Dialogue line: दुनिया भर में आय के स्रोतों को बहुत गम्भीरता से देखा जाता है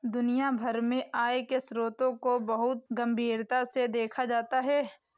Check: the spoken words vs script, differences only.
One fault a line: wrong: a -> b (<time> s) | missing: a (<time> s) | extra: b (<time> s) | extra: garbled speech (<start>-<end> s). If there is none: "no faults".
no faults